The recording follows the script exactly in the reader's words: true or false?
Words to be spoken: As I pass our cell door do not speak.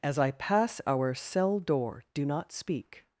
true